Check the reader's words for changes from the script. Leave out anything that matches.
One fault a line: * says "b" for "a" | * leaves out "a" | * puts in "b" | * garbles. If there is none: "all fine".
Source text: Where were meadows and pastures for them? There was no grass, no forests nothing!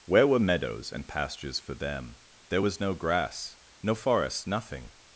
* says "forest" for "forests"